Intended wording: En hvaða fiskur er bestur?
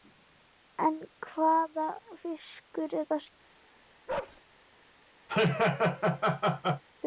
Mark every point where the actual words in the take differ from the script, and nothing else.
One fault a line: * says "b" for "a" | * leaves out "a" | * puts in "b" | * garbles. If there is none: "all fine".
all fine